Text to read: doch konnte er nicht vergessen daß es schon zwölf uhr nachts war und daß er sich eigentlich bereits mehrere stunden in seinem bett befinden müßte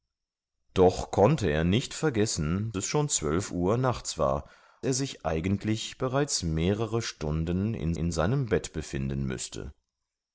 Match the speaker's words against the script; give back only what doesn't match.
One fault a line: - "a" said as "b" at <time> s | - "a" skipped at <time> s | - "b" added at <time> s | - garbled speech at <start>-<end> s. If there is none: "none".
- "daß" skipped at 2.7 s
- "und daß" skipped at 4.5 s
- "in" added at 7.9 s